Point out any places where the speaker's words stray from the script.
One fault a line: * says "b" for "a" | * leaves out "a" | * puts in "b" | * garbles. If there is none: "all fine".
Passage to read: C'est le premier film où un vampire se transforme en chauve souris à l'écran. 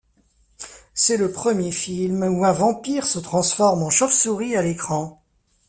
all fine